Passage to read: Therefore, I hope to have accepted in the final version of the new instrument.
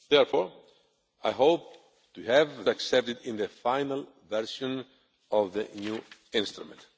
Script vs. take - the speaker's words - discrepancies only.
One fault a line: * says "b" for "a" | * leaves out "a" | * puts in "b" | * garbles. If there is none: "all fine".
all fine